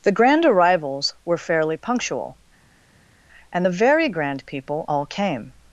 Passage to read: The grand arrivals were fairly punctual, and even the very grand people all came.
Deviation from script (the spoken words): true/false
true